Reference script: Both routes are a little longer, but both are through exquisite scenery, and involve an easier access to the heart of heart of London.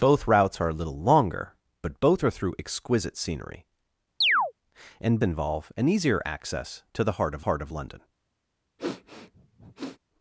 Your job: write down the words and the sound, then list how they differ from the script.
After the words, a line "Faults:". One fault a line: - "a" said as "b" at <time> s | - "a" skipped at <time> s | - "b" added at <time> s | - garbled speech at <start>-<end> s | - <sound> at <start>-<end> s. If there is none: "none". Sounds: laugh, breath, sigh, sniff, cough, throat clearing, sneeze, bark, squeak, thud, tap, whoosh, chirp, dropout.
Both routes are a little longer, but both are through exquisite scenery, and involve an easier access to the heart of heart of London.
Faults:
- chirp at 4.2-4.5 s
- sniff at 8.8-10.0 s